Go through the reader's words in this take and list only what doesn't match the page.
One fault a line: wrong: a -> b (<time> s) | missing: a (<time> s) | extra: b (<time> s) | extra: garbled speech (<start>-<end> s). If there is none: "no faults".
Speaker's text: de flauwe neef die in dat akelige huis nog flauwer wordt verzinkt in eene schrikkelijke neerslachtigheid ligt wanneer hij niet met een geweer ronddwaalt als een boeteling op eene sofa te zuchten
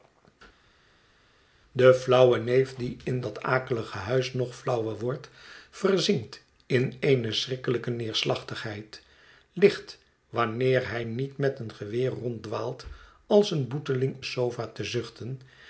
missing: op eene (14.2 s)